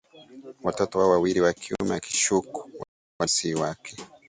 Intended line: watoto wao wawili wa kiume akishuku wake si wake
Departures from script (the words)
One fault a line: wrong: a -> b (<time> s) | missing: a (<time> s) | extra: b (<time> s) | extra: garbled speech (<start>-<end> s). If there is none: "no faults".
wrong: wake -> walikuwa (2.6 s)